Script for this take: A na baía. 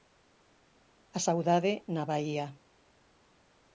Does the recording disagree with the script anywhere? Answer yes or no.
yes